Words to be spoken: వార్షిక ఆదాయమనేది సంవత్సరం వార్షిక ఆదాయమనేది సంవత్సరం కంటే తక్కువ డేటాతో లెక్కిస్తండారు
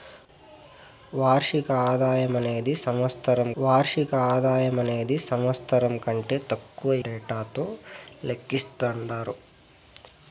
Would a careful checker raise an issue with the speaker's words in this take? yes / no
no